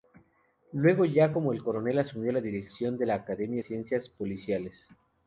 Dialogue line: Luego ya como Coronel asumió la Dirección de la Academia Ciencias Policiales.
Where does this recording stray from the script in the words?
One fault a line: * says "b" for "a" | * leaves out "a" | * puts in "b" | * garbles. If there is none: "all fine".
all fine